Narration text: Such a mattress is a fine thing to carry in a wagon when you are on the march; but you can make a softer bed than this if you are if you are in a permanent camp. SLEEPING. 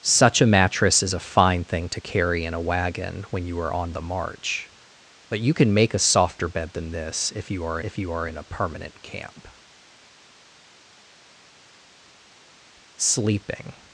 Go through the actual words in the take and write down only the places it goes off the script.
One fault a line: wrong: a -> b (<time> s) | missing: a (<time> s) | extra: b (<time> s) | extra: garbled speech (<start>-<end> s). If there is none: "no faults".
no faults